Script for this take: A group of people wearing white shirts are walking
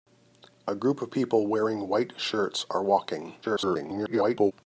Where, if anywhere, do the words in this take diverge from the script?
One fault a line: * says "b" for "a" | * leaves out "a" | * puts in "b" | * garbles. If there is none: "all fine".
* garbles